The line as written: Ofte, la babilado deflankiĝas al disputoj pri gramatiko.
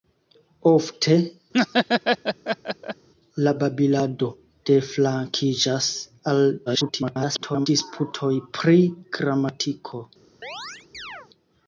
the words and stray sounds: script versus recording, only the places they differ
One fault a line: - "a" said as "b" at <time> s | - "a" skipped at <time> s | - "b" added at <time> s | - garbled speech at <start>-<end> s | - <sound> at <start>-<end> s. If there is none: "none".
- laugh at 1.5-3.1 s
- garbled speech at 6.7-7.7 s
- chirp at 10.4-11.3 s